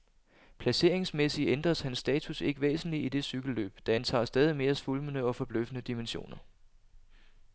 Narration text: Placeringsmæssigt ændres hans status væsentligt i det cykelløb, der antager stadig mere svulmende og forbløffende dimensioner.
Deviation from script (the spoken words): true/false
true